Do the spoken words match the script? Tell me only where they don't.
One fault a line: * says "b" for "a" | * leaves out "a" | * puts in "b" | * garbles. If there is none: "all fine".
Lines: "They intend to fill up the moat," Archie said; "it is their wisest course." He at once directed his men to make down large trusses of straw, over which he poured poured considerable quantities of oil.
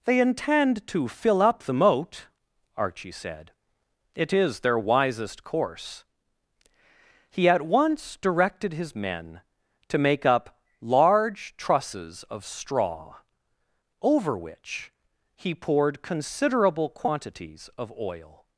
* says "up" for "down"
* leaves out "poured"